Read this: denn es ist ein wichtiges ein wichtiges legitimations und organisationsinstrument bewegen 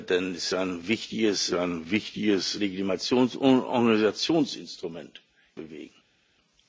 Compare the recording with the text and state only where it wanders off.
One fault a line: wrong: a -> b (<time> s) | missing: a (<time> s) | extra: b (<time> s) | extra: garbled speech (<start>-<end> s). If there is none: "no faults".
no faults